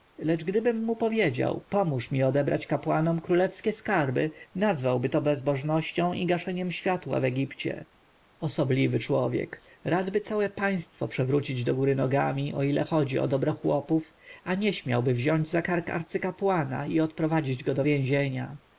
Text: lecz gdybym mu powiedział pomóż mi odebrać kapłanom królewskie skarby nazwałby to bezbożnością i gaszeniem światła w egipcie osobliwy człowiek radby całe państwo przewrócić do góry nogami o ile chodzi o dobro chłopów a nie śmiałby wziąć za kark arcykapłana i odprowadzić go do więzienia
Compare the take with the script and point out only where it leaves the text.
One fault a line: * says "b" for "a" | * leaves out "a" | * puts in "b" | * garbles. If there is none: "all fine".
all fine